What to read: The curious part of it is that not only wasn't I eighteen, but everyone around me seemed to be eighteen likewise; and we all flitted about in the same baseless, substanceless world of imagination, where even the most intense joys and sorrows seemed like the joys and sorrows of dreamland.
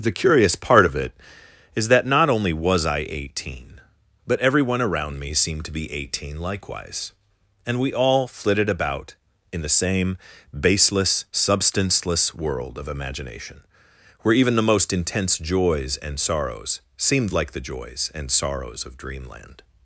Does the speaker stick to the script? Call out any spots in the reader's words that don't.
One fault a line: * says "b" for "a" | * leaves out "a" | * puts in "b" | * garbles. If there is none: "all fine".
* says "was" for "wasn't"